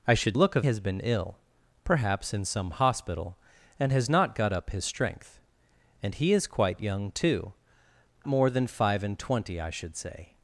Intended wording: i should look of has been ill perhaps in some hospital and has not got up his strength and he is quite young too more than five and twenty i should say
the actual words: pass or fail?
pass